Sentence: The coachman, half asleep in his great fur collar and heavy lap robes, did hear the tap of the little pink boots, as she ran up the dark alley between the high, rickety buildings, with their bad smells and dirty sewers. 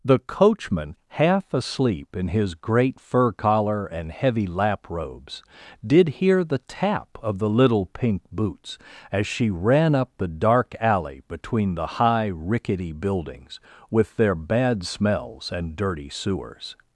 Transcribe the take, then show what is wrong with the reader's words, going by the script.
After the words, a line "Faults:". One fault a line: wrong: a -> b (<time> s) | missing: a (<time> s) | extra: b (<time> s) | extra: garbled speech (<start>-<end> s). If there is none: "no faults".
The coachman, half asleep in his great fur collar and heavy lap robes, did hear the tap of the little pink boots, as she ran up the dark alley between the high, rickety buildings, with their bad smells and dirty sewers.
Faults:
no faults